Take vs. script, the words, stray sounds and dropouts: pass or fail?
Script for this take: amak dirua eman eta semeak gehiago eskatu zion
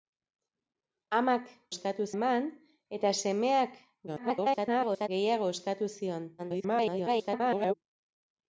fail